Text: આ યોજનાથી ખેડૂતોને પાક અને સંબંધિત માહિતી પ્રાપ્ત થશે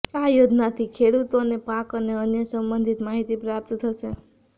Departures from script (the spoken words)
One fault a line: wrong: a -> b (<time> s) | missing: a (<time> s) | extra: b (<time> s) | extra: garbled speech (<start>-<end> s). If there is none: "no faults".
extra: અન્ય (2.2 s)